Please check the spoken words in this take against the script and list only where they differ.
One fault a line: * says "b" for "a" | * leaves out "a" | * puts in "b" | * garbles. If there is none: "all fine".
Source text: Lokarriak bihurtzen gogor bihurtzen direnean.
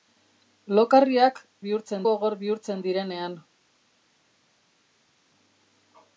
all fine